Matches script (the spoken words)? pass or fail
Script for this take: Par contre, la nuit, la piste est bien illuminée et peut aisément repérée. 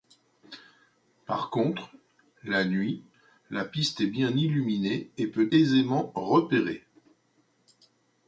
pass